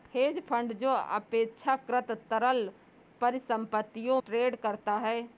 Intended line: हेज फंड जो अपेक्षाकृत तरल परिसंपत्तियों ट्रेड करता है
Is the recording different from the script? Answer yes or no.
no